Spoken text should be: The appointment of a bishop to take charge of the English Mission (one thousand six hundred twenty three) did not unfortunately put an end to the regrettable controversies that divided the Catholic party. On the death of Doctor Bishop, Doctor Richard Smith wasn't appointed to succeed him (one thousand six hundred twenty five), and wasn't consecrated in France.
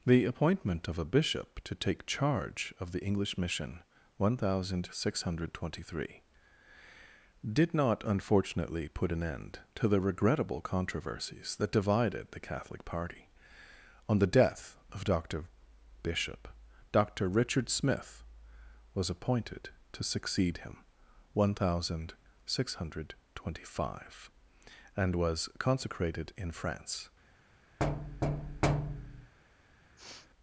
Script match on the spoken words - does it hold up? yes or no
no